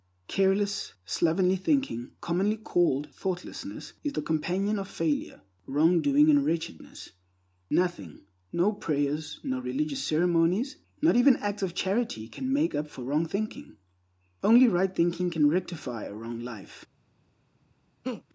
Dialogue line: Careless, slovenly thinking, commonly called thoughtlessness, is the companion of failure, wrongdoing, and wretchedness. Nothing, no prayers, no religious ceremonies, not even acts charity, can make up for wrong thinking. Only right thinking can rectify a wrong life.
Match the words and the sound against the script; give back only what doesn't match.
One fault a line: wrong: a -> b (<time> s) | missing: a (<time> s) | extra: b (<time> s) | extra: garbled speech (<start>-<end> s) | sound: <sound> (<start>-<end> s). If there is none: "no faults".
extra: of (11.6 s)
sound: laugh (18.0-18.2 s)